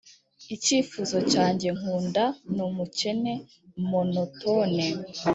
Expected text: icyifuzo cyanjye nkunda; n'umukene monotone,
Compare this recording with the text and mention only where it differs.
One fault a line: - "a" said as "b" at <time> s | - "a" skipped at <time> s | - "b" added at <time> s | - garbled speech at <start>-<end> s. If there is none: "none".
none